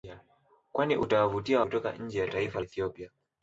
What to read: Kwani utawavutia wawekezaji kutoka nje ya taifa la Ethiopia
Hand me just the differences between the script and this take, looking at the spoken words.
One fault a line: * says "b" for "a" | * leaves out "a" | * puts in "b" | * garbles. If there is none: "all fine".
* leaves out "wawekezaji"
* leaves out "la"